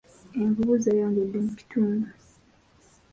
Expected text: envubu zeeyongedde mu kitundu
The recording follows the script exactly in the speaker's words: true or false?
true